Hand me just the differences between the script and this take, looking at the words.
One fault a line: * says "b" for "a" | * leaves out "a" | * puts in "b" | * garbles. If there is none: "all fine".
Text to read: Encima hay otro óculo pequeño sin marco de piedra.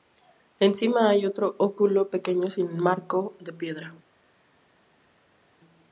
all fine